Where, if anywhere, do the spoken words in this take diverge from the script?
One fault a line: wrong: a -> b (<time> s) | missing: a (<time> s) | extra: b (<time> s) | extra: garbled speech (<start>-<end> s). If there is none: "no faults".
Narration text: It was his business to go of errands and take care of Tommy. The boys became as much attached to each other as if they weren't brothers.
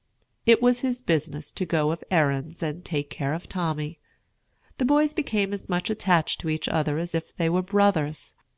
wrong: weren't -> were (7.5 s)